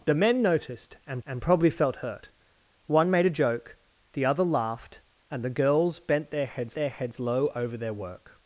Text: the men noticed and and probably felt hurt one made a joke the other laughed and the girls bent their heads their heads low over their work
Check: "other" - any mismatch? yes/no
no